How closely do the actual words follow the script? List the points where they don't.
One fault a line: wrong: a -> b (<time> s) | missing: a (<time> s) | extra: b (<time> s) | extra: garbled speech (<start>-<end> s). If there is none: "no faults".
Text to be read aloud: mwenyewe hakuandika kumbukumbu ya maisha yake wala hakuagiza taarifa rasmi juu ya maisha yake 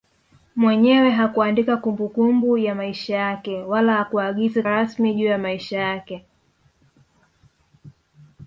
missing: taarifa (4.6 s)